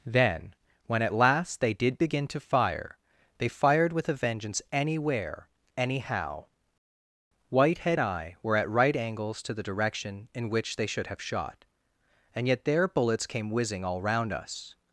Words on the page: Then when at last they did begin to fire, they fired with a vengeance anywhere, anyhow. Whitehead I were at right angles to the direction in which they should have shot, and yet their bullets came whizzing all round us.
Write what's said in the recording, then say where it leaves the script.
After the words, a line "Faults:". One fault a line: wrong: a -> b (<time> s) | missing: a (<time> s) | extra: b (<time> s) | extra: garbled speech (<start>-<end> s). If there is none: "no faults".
Then when at last they did begin to fire, they fired with a vengeance anywhere, anyhow. Whitehead I were at right angles to the direction in which they should have shot, and yet their bullets came whizzing all round us.
Faults:
no faults